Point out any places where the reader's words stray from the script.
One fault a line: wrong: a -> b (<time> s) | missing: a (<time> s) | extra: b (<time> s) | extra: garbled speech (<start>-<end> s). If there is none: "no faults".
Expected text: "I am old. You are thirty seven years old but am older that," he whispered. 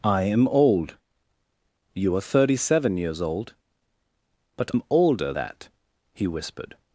no faults